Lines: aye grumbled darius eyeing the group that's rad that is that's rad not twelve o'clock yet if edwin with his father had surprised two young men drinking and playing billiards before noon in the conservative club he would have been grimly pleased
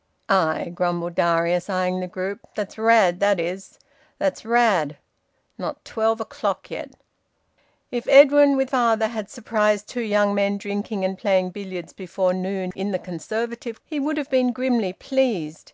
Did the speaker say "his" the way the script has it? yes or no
no